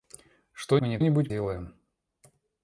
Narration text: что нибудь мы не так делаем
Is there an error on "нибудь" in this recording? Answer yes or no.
yes